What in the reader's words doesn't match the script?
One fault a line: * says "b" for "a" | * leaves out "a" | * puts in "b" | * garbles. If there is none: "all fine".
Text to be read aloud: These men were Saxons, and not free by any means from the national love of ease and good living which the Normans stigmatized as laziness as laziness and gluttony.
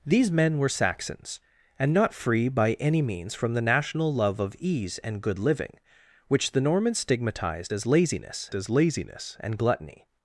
all fine